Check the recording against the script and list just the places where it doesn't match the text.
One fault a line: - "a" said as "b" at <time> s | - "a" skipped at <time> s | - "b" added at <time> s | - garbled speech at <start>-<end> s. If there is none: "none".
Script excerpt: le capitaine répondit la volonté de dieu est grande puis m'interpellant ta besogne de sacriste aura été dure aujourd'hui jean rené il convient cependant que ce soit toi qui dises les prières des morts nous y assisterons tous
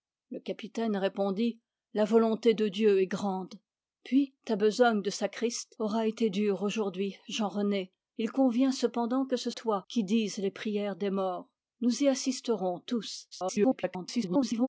- "m'interpellant" skipped at 4.3 s
- "soit" skipped at 9.5 s
- garbled speech at 13.3-14.7 s